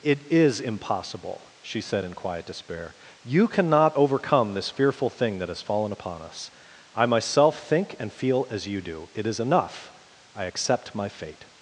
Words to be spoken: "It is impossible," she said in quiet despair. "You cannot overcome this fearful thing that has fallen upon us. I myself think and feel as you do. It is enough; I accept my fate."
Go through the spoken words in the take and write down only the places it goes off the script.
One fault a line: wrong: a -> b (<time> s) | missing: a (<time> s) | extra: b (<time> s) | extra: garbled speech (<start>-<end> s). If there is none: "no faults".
no faults